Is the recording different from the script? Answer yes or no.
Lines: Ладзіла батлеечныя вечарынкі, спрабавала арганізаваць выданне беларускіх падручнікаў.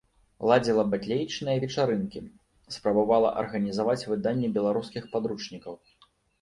no